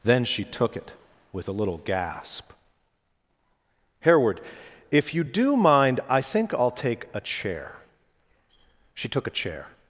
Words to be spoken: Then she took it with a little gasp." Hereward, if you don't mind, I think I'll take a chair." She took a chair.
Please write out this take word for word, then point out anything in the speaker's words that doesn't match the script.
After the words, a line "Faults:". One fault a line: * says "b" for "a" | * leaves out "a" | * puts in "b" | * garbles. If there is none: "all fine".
Then she took it with a little gasp." Hereward, if you do mind, I think I'll take a chair." She took a chair.
Faults:
* says "do" for "don't"